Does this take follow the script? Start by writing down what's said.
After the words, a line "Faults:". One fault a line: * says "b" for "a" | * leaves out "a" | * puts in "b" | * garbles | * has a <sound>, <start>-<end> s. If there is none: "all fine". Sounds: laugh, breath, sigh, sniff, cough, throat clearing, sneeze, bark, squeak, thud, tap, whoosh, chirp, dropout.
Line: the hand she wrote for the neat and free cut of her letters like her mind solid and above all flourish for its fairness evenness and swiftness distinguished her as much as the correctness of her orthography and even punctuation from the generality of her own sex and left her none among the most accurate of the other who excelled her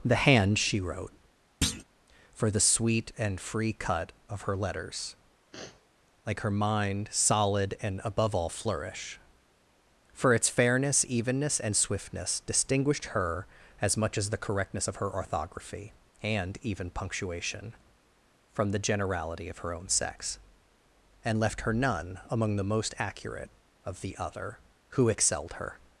the hand she wrote for the sweet and free cut of her letters like her mind solid and above all flourish for its fairness evenness and swiftness distinguished her as much as the correctness of her orthography and even punctuation from the generality of her own sex and left her none among the most accurate of the other who excelled her
Faults:
* has a thud, 1.6-1.8 s
* says "sweet" for "neat"
* has a sniff, 5.5-5.9 s